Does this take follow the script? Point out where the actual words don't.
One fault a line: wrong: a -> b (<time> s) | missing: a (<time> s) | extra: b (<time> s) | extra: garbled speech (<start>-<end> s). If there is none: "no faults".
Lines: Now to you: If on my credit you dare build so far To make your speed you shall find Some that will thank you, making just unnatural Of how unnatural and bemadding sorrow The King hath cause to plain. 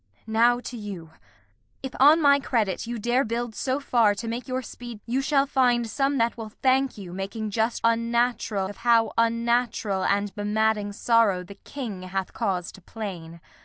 no faults